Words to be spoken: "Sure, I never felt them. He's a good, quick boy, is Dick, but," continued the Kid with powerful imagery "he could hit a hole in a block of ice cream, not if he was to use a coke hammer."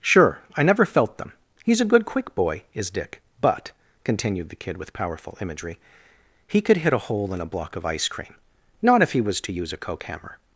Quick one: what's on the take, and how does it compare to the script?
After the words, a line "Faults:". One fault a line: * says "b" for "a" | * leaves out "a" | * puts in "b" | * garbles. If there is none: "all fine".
"Sure, I never felt them. He's a good, quick boy, is Dick, but," continued the Kid with powerful imagery "he could hit a hole in a block of ice cream, not if he was to use a coke hammer."
Faults:
all fine